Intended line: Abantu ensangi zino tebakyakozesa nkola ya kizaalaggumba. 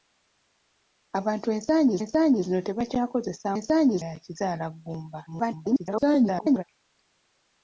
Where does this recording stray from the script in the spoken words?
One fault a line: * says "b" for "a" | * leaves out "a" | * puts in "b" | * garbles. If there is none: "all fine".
* puts in "ensangi"
* says "ensangi" for "nkola"
* garbles